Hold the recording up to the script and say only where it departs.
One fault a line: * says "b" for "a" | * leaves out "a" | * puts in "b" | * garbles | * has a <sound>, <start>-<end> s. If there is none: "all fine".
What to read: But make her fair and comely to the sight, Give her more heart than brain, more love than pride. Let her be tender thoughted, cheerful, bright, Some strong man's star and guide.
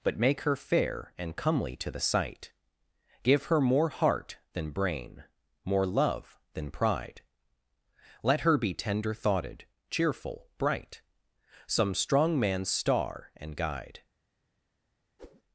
* has a whoosh, 15.2-15.4 s